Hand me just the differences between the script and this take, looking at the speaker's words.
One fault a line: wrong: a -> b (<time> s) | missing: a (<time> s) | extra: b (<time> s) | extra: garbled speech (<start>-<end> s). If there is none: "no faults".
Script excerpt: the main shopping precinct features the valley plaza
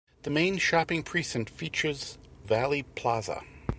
missing: the (2.2 s)